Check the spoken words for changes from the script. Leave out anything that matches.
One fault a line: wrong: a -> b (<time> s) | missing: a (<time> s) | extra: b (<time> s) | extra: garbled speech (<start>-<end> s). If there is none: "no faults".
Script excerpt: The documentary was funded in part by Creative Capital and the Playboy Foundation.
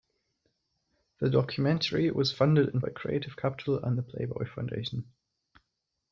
missing: part (2.8 s)